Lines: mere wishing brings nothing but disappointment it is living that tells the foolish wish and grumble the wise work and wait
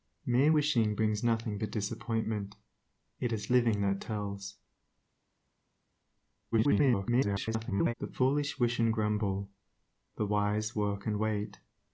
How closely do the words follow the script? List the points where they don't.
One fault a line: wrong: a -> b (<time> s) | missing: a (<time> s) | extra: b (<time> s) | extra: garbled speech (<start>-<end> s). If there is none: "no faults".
extra: garbled speech (6.5-7.9 s)